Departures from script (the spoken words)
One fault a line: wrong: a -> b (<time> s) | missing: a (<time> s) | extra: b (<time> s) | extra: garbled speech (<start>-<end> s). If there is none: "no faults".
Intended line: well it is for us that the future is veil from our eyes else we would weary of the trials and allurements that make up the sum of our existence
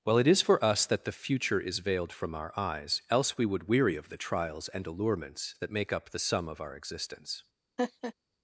wrong: veil -> veiled (1.8 s)